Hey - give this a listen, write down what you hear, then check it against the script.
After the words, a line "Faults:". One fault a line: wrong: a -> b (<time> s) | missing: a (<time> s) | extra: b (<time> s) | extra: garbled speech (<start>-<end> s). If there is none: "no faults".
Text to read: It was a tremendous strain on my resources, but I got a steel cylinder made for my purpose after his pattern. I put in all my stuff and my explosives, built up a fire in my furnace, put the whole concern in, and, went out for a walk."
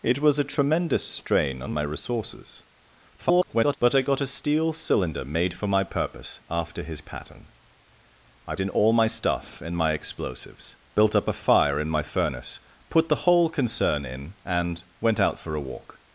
It was a tremendous strain on my resources, [garbled] but I got a steel cylinder made for my purpose after his pattern. I in all my stuff and my explosives, built up a fire in my furnace, put the whole concern in, and, went out for a walk."
Faults:
extra: garbled speech (3.2-3.8 s)
missing: put (8.6 s)